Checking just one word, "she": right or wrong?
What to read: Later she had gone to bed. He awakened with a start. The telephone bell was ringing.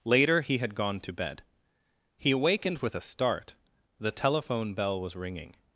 wrong